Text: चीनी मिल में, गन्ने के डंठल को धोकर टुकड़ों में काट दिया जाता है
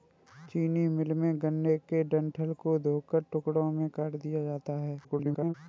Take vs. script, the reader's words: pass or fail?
fail